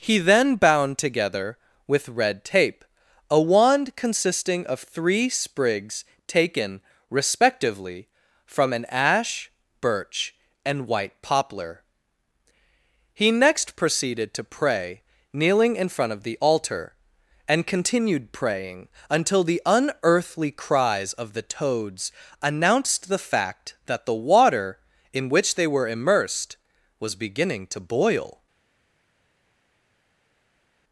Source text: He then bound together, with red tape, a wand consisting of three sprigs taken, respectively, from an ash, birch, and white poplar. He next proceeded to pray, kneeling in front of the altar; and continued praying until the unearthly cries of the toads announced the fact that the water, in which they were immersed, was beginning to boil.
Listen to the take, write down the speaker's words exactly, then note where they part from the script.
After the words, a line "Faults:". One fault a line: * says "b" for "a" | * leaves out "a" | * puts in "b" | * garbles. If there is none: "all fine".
He then bound together, with red tape, a wand consisting of three sprigs taken, respectively, from an ash, birch, and white poplar. He next proceeded to pray, kneeling in front of the altar; and continued praying until the unearthly cries of the toads announced the fact that the water, in which they were immersed, was beginning to boil.
Faults:
all fine